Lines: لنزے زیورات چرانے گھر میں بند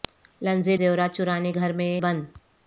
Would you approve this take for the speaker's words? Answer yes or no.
yes